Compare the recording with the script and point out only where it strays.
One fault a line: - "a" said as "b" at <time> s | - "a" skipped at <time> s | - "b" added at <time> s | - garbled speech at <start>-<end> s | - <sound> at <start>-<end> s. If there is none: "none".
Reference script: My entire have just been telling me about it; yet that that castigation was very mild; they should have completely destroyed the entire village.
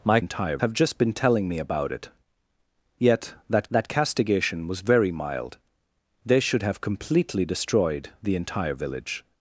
none